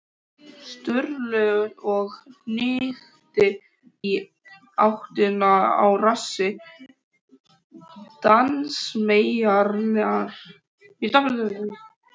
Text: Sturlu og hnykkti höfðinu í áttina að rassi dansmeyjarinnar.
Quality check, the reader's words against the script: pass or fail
fail